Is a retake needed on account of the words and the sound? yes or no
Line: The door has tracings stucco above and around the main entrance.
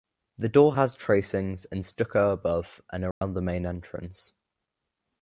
yes